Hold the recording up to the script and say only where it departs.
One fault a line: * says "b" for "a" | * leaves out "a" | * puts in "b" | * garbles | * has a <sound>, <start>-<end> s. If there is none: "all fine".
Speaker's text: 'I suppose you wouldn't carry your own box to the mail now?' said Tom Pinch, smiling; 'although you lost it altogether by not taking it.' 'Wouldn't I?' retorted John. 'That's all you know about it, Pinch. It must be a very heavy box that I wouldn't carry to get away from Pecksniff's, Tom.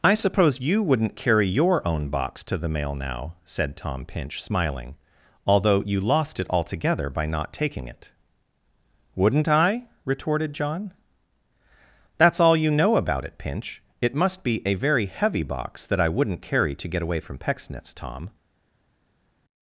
all fine